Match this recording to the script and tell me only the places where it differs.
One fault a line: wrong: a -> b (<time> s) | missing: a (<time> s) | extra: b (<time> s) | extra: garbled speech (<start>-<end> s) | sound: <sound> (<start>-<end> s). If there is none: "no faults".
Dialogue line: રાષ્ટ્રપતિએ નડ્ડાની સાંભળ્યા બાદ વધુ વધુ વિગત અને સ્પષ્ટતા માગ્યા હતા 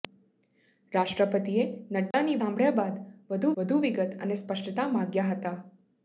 sound: dropout (2.1-2.1 s)